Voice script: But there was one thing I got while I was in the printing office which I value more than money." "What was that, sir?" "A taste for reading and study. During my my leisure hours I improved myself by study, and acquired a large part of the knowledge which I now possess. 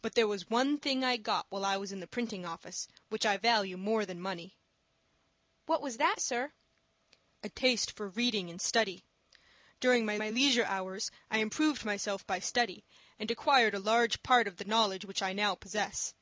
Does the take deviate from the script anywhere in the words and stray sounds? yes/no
no